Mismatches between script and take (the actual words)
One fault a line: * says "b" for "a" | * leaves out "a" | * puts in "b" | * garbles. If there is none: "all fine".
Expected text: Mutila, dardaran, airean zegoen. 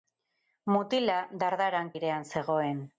all fine